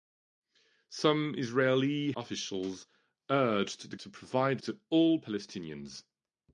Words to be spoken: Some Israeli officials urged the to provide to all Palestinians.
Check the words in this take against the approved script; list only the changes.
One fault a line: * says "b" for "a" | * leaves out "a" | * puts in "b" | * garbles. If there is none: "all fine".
all fine